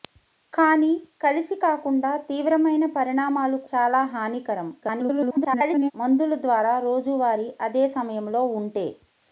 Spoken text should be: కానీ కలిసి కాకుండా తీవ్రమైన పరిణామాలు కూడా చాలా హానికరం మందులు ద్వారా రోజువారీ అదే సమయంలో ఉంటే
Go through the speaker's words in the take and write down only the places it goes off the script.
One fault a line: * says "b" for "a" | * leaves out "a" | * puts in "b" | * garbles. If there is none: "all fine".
* leaves out "కూడా"
* garbles